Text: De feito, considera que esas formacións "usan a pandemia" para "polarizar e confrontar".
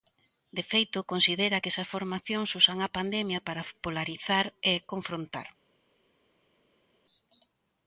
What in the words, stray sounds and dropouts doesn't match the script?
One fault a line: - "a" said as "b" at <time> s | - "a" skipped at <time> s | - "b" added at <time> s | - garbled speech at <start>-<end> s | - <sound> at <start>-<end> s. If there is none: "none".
none